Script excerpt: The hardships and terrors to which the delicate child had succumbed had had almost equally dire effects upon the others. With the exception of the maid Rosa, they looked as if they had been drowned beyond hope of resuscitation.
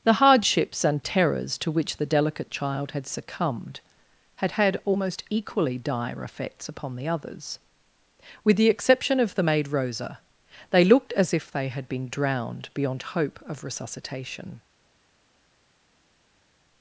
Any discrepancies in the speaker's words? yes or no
no